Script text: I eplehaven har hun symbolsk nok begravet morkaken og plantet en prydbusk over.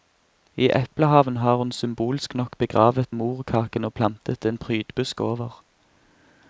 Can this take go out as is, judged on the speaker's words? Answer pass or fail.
pass